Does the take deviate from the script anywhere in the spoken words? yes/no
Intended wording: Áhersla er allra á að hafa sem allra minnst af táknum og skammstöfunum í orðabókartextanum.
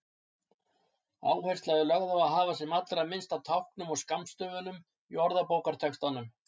yes